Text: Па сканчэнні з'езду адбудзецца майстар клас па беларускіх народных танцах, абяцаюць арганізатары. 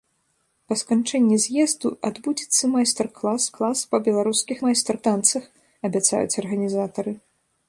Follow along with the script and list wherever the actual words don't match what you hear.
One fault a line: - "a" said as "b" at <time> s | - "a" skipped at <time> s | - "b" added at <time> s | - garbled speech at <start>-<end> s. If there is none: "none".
- "клас" added at 3.6 s
- "народных" said as "майстар" at 4.6 s